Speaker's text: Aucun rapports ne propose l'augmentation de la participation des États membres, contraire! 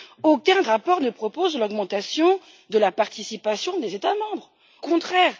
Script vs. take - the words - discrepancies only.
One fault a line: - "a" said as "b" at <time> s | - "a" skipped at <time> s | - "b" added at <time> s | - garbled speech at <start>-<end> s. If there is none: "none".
none